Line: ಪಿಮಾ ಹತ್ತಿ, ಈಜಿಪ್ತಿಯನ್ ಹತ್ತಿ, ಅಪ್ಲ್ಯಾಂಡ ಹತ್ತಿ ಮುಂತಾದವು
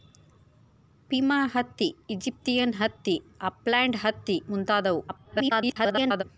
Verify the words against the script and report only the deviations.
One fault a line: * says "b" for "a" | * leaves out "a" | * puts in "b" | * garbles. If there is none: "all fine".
* garbles